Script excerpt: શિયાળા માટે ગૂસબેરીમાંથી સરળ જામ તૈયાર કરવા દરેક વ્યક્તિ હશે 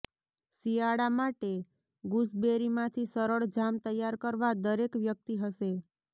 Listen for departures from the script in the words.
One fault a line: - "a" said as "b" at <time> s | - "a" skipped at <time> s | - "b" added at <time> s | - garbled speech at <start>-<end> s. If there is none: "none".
none